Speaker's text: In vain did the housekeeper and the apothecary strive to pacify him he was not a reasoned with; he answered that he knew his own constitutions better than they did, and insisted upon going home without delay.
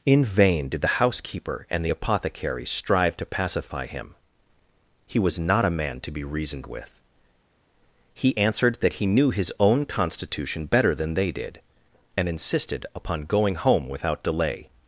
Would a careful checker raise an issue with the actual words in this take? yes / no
yes